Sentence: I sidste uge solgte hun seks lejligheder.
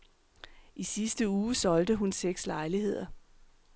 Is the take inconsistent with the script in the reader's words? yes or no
no